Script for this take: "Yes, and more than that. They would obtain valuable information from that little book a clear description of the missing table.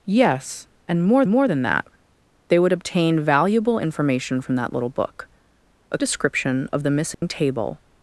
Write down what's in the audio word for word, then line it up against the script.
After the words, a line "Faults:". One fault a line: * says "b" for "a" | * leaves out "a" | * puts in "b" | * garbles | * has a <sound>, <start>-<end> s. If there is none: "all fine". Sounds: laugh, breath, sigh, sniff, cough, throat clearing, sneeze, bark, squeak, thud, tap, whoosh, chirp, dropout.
"Yes, and more more than that. They would obtain valuable information from that little book a description of the missing table.
Faults:
* puts in "more"
* leaves out "clear"
* has a dropout, 7.1-7.2 s